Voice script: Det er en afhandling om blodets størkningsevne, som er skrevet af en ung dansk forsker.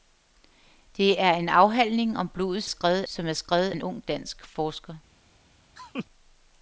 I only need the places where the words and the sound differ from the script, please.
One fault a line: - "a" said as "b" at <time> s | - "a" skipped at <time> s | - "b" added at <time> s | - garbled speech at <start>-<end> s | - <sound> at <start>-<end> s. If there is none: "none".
- "størkningsevne" said as "skrevet" at 2.6 s
- "af" skipped at 3.7 s
- laugh at 5.8-6.1 s